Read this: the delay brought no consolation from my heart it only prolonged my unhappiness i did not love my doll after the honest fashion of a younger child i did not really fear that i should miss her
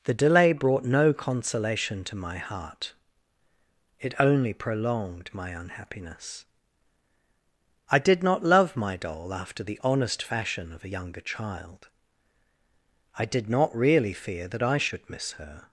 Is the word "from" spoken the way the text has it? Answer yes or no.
no